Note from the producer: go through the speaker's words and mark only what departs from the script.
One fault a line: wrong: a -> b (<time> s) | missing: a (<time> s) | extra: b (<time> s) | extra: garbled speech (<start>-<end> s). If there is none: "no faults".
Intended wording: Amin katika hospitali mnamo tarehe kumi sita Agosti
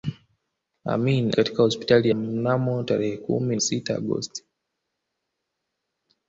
no faults